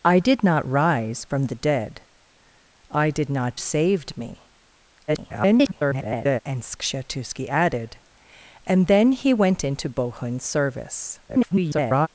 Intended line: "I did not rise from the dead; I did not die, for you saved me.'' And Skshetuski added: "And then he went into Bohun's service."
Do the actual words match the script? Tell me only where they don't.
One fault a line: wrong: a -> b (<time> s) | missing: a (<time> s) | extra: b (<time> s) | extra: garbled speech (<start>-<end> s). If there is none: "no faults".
missing: die for you (3.6 s)
extra: garbled speech (5.1-6.4 s)
extra: garbled speech (11.3-12.1 s)